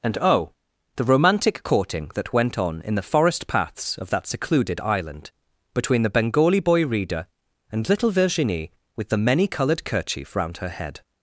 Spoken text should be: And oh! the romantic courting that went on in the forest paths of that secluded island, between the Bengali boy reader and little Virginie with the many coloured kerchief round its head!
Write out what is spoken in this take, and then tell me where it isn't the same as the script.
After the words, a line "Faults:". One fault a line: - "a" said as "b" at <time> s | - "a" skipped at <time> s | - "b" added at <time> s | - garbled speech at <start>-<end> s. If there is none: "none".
And oh! the romantic courting that went on in the forest paths of that secluded island, between the Bengali boy reader and little Virginie with the many coloured kerchief round her head!
Faults:
- "its" said as "her" at 10.6 s